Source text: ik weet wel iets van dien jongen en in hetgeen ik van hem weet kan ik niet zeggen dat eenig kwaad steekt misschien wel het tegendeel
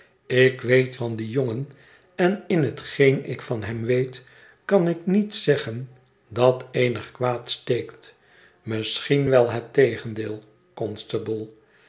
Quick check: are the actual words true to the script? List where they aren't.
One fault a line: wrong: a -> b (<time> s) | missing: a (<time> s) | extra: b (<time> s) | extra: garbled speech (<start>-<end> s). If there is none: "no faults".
missing: wel iets (0.9 s)